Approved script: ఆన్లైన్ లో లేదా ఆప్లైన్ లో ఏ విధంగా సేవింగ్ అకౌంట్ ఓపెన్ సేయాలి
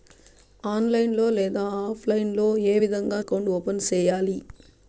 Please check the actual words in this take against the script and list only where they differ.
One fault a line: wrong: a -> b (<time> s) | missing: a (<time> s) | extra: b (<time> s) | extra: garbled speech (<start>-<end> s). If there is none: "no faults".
missing: సేవింగ్ (3.2 s)